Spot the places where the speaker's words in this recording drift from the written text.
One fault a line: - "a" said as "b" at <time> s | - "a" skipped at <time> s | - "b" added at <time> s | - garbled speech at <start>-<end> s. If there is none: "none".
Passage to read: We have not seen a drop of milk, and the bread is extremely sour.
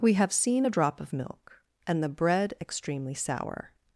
- "not" skipped at 0.3 s
- "is" skipped at 2.5 s